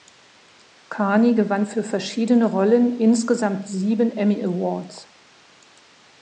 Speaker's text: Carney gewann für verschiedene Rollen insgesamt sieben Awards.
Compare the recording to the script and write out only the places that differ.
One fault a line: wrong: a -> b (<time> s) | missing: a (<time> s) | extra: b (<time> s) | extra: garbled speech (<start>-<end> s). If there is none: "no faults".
extra: Emmy (4.2 s)